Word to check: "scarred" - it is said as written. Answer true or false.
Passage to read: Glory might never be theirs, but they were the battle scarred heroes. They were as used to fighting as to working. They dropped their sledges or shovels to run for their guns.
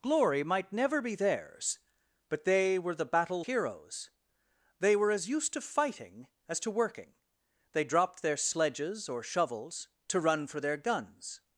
false